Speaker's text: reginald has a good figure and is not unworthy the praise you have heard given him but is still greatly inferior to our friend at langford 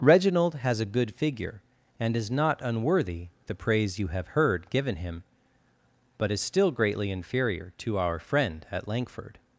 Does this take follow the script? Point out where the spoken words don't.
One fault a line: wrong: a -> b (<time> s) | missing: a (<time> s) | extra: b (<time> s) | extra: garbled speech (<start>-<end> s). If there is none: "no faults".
no faults